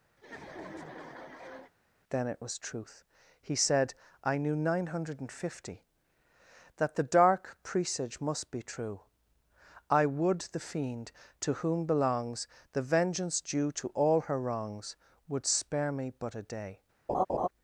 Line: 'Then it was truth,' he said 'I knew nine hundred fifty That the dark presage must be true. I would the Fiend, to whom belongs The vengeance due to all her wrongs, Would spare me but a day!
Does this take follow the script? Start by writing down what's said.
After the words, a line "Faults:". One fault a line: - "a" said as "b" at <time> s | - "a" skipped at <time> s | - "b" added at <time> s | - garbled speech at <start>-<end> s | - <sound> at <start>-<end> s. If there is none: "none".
'Then it was truth,' he said 'I knew nine hundred fifty That the dark presage must be true. I would the Fiend, to whom belongs The vengeance due to all her wrongs, Would spare me but a day!
Faults:
- laugh at 0.2-1.7 s
- laugh at 17.1-17.5 s